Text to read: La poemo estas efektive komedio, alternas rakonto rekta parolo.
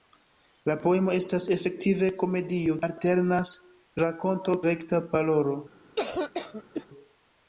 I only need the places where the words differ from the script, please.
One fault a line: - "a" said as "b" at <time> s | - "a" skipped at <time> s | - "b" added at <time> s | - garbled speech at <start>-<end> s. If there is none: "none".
none